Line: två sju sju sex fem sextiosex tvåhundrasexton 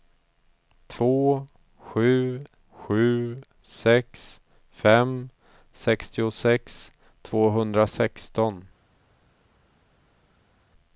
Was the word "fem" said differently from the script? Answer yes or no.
no